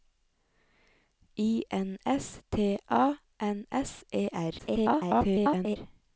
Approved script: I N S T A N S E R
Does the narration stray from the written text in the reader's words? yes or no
yes